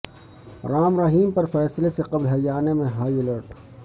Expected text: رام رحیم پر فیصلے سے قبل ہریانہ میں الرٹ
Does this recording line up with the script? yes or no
no